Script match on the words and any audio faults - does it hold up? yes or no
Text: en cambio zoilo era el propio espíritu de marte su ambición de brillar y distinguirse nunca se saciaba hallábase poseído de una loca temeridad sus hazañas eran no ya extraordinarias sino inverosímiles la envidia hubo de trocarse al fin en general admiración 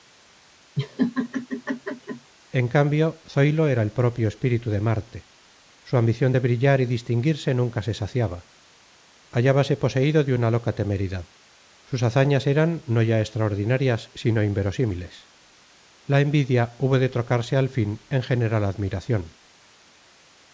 no